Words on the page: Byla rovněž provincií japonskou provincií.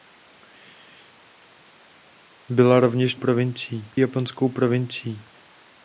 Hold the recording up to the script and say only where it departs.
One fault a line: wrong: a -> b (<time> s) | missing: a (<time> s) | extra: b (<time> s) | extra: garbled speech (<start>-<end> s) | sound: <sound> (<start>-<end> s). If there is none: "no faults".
no faults